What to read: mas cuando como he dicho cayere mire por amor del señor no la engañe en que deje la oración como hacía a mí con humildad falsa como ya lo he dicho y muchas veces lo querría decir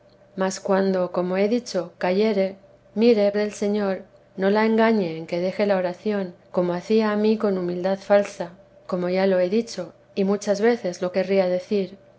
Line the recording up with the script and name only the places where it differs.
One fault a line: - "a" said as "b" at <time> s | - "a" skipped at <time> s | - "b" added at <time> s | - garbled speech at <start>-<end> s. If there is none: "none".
- "por amor" skipped at 3.3 s